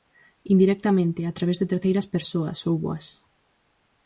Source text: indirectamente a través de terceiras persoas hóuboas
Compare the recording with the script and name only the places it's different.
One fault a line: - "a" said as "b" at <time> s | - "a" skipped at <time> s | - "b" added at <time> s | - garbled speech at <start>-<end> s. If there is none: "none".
none